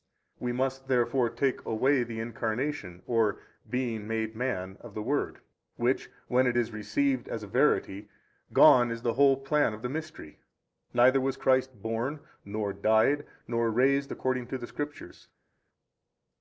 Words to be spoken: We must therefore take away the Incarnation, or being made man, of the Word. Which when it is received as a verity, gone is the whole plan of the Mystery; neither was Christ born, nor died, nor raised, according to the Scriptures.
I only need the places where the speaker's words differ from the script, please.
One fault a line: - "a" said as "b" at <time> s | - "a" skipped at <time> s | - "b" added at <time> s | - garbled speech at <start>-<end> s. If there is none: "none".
none